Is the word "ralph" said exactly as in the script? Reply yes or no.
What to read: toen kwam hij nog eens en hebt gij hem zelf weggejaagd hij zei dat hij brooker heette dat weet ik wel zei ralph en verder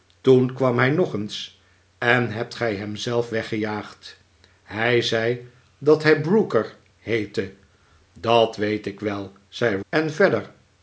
no